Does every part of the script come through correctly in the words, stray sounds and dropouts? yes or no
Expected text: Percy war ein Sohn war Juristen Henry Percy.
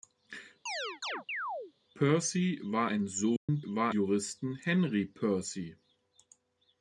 no